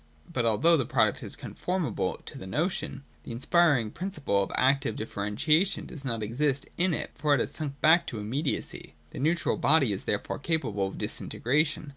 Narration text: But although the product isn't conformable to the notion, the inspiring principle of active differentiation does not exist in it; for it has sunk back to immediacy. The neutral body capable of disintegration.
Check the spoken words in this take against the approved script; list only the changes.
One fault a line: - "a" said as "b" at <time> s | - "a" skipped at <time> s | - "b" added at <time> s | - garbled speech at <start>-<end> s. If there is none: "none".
- "isn't" said as "is" at 1.2 s
- "is therefore" added at 9.9 s